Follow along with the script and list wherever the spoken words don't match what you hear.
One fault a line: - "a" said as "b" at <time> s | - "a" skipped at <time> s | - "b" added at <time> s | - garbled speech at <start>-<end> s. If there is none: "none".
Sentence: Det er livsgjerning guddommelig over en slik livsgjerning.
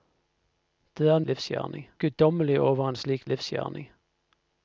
none